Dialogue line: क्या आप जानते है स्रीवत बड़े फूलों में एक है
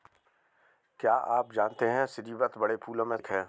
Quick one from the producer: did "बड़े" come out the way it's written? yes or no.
yes